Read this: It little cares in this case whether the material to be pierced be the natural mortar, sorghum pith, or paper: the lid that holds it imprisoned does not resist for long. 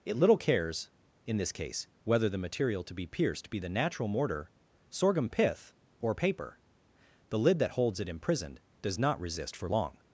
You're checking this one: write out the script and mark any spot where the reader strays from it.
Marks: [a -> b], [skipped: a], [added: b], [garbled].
It little cares in this case whether the material to be pierced be the natural mortar, sorghum pith, or paper: the lid that holds it imprisoned does not resist for long.